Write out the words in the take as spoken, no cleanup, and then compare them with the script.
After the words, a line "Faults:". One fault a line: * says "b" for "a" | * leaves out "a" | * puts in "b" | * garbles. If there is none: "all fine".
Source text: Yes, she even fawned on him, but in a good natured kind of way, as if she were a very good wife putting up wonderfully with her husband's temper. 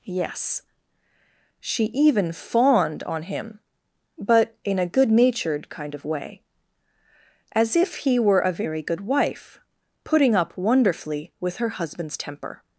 Yes, she even fawned on him, but in a good natured kind of way, as if he were a very good wife putting up wonderfully with her husband's temper.
Faults:
* says "he" for "she"